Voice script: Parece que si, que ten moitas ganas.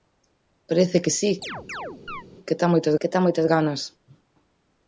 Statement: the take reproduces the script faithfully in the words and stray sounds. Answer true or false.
false